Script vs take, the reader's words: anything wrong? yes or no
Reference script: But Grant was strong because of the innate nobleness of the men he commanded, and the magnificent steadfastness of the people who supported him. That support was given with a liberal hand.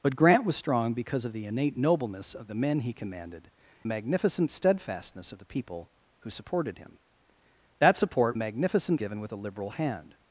yes